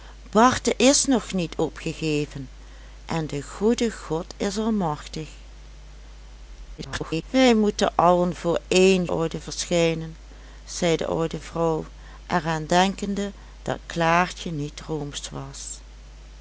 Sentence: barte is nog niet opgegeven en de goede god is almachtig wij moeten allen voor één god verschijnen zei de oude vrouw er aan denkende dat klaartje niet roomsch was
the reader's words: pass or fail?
fail